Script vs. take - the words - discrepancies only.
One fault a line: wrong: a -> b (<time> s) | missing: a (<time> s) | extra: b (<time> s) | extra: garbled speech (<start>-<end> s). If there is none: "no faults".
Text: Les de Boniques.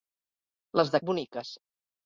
no faults